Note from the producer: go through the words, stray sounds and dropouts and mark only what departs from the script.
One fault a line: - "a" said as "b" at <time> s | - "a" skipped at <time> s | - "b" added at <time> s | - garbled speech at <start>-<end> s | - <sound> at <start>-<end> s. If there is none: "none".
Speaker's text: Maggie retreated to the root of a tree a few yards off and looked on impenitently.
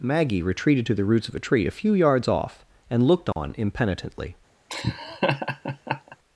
- "root" said as "roots" at 1.0 s
- dropout at 3.3-3.4 s
- laugh at 4.7-6.2 s